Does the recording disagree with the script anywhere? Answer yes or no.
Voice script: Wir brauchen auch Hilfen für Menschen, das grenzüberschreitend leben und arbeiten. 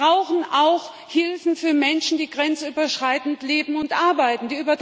yes